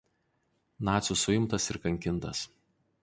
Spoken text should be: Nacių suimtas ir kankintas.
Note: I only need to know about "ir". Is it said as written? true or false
true